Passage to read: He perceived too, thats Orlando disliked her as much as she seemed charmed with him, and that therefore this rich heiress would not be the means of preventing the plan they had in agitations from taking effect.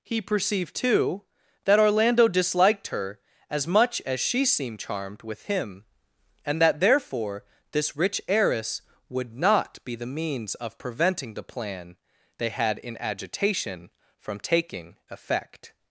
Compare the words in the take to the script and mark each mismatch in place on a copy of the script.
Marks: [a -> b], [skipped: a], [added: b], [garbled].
He perceived too, [thats -> that] Orlando disliked her as much as she seemed charmed with him, and that therefore this rich heiress would not be the means of preventing the plan they had in [agitations -> agitation] from taking effect.